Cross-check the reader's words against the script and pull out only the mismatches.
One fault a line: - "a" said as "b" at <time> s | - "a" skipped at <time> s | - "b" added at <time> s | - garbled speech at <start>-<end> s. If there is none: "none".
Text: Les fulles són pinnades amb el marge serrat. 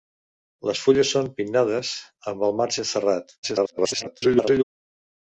- garbled speech at 3.4-4.6 s